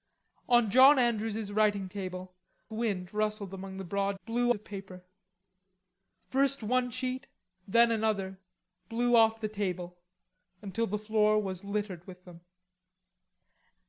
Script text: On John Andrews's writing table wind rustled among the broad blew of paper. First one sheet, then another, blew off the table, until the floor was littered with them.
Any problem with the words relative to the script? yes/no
no